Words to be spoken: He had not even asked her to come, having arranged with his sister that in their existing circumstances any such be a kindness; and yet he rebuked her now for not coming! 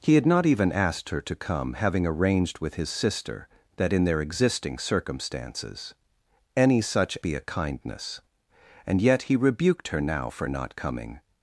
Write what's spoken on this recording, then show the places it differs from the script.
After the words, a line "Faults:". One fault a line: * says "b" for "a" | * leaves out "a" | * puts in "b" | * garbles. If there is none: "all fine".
He had not even asked her to come, having arranged with his sister that in their existing circumstances any such be a kindness; and yet he rebuked her now for not coming!
Faults:
all fine